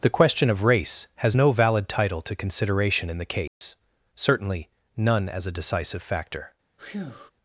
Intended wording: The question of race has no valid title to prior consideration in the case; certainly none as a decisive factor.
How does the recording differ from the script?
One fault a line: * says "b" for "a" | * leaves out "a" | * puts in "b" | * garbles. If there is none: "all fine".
* leaves out "prior"